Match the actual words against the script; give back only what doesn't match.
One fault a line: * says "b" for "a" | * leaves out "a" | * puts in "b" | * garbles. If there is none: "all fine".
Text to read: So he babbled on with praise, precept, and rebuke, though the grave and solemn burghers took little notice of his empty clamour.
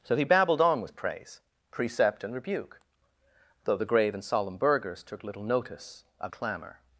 * leaves out "his empty"